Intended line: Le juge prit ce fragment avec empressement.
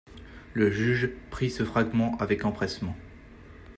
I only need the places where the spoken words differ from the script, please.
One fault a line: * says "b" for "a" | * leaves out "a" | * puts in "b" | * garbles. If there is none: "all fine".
all fine